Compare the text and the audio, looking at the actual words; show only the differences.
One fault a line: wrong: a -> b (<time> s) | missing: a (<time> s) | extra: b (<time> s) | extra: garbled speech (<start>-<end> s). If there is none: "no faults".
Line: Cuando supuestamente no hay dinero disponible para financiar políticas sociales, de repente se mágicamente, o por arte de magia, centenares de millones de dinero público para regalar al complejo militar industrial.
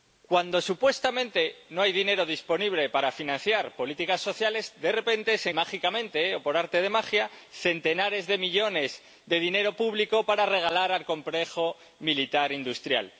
no faults